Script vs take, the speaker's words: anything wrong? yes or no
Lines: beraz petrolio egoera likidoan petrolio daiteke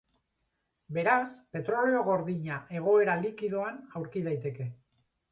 yes